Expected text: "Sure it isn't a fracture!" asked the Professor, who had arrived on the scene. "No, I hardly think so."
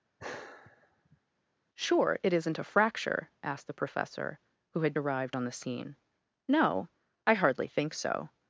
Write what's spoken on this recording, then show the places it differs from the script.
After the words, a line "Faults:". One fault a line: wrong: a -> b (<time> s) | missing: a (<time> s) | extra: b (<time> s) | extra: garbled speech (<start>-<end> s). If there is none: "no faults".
"Sure it isn't a fracture!" asked the Professor, who had arrived on the scene. "No, I hardly think so."
Faults:
no faults